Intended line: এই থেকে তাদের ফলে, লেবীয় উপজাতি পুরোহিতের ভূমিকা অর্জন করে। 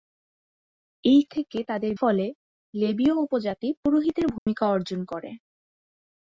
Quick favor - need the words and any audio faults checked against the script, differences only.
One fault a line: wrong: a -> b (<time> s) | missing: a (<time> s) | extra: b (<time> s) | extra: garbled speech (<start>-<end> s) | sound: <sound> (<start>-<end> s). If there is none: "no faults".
sound: dropout (4.4-4.5 s)